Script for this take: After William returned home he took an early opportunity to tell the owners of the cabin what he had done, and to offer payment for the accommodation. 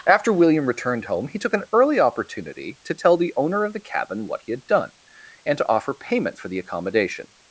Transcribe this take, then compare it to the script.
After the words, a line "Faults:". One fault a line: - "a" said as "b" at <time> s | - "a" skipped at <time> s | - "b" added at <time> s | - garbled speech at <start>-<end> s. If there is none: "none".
After William returned home he took an early opportunity to tell the owner of the cabin what he had done, and to offer payment for the accommodation.
Faults:
- "owners" said as "owner" at 3.4 s